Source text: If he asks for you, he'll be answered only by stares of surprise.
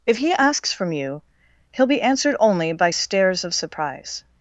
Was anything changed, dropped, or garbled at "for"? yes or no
yes